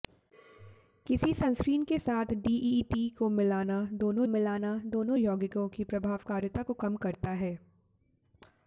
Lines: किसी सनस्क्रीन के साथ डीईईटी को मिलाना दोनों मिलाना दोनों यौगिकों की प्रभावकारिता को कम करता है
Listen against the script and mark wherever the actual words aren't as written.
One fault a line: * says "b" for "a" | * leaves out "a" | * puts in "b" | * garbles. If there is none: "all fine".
all fine